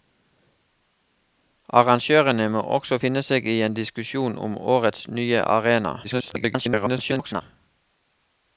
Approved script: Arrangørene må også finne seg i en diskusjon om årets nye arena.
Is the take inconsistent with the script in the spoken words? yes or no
yes